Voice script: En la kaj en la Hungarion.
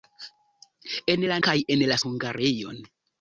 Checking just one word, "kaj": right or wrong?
right